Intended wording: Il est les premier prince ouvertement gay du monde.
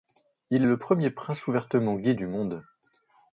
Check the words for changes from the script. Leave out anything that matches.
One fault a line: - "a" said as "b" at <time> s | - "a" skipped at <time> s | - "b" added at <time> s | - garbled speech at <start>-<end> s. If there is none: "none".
- "les" said as "le" at 0.6 s